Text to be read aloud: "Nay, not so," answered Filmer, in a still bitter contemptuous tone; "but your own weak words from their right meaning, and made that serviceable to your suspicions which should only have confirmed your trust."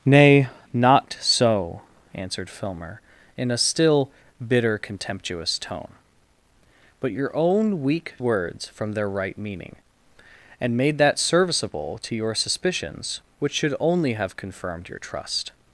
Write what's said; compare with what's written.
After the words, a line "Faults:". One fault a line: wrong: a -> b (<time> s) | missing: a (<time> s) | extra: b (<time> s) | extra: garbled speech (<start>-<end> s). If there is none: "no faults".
"Nay, not so," answered Filmer, in a still bitter contemptuous tone; "but your own weak words from their right meaning, and made that serviceable to your suspicions which should only have confirmed your trust."
Faults:
no faults